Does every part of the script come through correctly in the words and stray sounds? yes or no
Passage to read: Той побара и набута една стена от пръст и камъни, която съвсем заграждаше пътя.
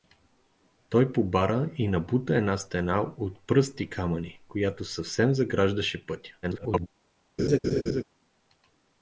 no